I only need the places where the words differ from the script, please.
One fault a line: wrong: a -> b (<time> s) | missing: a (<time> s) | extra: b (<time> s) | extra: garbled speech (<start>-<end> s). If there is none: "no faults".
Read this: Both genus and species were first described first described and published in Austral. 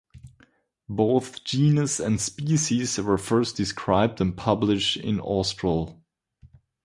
missing: first described (4.2 s)